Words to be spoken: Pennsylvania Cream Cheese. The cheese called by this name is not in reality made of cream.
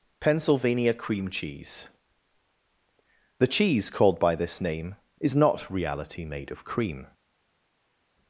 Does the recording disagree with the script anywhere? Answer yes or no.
yes